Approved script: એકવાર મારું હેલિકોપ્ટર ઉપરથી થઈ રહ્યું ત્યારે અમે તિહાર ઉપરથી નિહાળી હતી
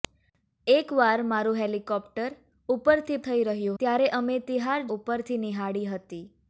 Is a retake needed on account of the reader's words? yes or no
no